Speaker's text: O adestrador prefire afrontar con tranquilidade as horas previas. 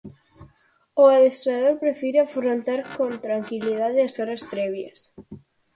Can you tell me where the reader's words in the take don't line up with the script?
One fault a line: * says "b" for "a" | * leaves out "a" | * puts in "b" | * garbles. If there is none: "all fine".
all fine